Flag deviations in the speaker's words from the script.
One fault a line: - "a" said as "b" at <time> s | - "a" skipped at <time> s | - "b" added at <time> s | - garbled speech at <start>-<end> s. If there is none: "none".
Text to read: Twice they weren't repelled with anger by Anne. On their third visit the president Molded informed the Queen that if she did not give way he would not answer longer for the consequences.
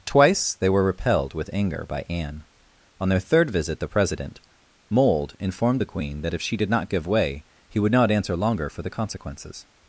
- "weren't" said as "were" at 0.7 s
- "Molded" said as "Mold" at 4.9 s